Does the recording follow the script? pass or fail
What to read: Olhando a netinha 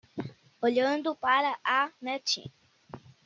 fail